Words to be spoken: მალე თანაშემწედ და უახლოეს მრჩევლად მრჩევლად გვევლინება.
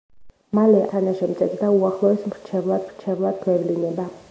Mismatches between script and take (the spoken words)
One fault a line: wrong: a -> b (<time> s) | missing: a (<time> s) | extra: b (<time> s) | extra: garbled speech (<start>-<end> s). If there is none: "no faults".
no faults